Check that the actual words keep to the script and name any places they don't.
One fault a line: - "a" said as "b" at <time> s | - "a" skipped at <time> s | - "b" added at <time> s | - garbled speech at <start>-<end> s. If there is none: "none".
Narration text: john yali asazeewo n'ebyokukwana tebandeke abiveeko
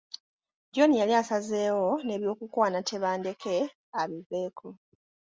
none